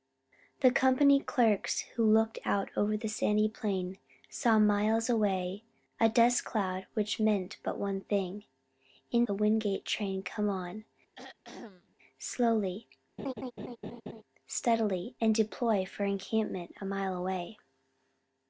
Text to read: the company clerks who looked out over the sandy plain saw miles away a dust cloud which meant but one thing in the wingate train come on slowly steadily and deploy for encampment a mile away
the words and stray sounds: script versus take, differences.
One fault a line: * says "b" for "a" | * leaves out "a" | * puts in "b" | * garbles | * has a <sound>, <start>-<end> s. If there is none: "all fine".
* has a throat clearing, 11.1-12.0 s
* has a laugh, 13.2-14.2 s